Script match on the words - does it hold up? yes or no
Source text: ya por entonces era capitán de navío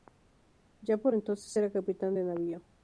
yes